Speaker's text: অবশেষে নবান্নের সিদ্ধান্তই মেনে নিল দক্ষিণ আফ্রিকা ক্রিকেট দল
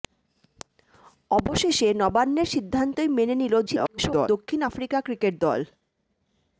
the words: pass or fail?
fail